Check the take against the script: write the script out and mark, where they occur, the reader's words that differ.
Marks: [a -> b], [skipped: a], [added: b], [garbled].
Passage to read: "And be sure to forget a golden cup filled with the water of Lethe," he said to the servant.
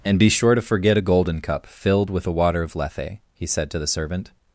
"And be sure to forget a golden cup filled with the water of Lethe," he said to the servant.